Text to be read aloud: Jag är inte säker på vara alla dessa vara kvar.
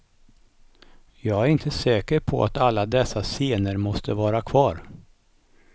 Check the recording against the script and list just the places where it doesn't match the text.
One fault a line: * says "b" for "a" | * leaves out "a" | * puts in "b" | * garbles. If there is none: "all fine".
* says "att" for "vara"
* puts in "scener måste"